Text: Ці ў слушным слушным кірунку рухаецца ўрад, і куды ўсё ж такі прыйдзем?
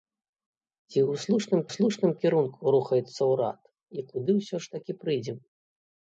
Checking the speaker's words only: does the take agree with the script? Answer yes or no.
yes